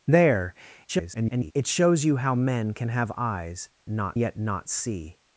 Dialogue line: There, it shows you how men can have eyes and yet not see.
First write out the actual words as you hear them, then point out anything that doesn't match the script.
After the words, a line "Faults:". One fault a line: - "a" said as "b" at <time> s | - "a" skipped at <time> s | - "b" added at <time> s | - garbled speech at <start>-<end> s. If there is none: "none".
There, [garbled] it shows you how men can have eyes not yet not see.
Faults:
- garbled speech at 0.9-1.5 s
- "and" said as "not" at 3.9 s